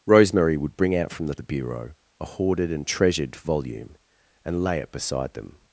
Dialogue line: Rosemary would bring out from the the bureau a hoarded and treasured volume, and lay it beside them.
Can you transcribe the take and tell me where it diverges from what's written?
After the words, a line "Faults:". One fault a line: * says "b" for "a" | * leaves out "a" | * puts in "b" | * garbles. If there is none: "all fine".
Rosemary would bring out from the the bureau a hoarded and treasured volume, and lay it beside them.
Faults:
all fine